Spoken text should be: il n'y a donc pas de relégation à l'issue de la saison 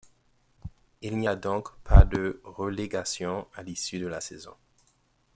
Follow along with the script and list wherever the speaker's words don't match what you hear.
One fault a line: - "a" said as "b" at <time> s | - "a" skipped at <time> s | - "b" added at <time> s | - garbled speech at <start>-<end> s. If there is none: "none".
none